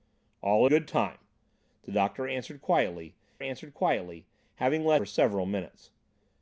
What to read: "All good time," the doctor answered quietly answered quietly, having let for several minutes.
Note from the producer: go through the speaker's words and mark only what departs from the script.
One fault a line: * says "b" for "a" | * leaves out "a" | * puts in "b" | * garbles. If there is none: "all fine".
all fine